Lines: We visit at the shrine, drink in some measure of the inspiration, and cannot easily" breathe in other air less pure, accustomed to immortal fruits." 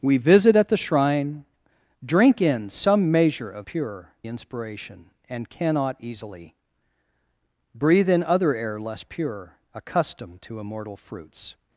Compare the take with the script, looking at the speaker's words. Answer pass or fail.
fail